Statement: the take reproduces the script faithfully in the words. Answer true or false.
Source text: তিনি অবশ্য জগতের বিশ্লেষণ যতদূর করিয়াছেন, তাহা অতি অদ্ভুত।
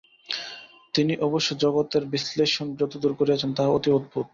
true